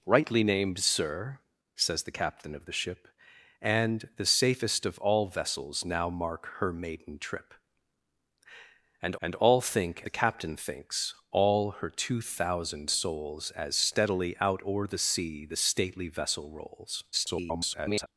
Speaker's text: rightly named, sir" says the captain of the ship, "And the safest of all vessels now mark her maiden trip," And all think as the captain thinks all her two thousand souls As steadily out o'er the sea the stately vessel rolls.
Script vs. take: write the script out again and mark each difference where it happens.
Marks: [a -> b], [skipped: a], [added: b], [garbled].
rightly named, sir" says the captain of the ship, "And the safest of all vessels now mark her maiden trip," And [added: And] all think [skipped: as] the captain thinks all her two thousand souls As steadily out o'er the sea the stately vessel rolls. [garbled]